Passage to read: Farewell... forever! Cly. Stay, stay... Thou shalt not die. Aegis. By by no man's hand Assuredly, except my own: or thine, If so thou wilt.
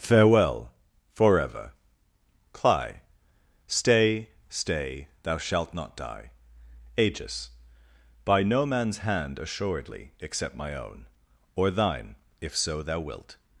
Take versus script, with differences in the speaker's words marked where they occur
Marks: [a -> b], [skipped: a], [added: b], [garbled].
Farewell... forever! Cly. Stay, stay... Thou shalt not die. Aegis. By [skipped: by] no man's hand Assuredly, except my own: or thine, If so thou wilt.